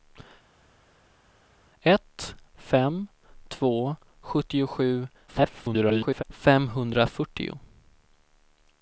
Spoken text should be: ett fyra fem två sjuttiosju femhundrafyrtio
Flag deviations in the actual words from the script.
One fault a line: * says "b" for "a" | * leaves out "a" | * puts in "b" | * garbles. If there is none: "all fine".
* leaves out "fyra"
* garbles